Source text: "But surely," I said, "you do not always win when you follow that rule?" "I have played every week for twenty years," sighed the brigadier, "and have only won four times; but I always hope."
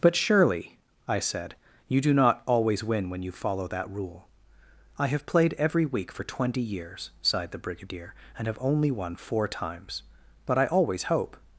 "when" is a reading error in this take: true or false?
false